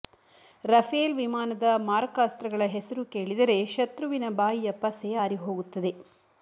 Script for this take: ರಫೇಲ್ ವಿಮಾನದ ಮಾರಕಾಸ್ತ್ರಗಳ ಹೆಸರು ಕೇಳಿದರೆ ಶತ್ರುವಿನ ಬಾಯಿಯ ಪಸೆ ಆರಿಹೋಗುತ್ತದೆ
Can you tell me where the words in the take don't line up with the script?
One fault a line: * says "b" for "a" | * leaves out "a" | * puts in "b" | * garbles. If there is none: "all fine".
all fine